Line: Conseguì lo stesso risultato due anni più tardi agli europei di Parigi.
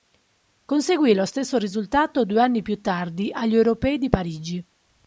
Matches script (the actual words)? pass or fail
pass